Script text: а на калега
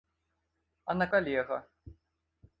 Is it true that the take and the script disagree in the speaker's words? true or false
false